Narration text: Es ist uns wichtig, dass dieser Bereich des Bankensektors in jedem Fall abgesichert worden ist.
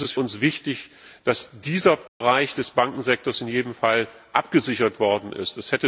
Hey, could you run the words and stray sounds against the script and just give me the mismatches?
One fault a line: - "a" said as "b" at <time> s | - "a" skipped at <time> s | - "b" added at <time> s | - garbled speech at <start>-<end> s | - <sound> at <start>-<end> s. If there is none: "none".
- dropout at 2.1-2.2 s